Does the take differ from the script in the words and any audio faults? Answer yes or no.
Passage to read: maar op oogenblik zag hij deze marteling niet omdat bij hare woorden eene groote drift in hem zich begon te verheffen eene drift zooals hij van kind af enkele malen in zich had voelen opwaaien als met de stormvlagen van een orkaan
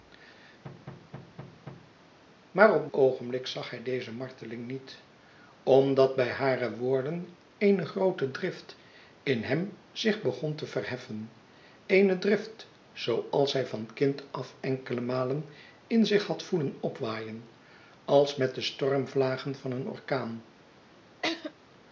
yes